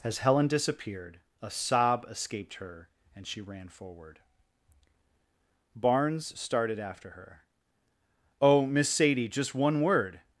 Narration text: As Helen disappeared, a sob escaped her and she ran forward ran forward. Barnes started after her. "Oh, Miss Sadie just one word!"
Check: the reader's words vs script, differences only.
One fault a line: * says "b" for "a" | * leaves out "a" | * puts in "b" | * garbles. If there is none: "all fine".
* leaves out "ran forward"